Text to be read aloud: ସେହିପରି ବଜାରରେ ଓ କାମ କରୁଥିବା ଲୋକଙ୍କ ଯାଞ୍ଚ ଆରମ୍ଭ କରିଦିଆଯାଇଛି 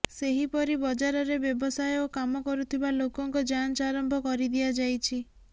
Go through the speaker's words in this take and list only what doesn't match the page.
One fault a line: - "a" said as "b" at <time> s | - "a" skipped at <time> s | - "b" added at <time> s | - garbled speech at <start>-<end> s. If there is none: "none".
- "ବ୍ୟବସାୟ" added at 1.4 s